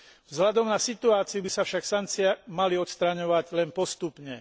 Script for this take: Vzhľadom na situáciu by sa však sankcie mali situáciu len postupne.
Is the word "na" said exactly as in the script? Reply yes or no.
yes